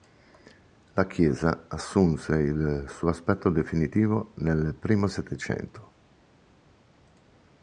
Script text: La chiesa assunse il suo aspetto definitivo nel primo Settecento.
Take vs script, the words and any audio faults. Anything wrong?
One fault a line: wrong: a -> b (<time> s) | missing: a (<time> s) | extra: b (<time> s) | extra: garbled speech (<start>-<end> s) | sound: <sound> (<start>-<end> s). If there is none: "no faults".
no faults